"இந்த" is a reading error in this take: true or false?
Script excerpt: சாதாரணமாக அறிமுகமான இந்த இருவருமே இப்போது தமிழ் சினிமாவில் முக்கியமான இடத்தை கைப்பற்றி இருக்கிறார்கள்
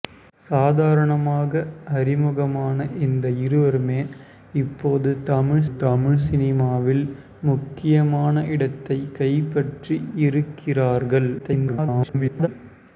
false